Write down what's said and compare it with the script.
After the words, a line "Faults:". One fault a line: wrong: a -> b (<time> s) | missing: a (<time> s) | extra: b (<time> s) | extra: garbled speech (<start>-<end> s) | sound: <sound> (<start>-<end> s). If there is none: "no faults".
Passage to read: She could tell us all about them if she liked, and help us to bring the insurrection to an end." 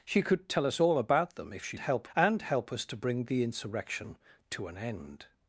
She could tell us all about them if she help, and help us to bring the insurrection to an end."
Faults:
wrong: liked -> help (1.8 s)